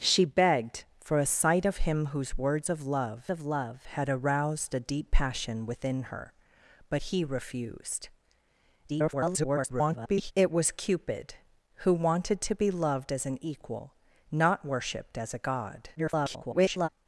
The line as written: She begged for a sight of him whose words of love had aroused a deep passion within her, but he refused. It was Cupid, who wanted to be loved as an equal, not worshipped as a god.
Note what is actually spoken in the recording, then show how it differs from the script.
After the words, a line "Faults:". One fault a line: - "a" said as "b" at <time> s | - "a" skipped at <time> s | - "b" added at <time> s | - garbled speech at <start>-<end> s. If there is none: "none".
She begged for a sight of him whose words of love of love had aroused a deep passion within her, but he refused. [garbled] It was Cupid, who wanted to be loved as an equal, not worshipped as a god. [garbled]
Faults:
- "of love" added at 3.3 s
- garbled speech at 8.9-10.3 s
- garbled speech at 15.9-16.9 s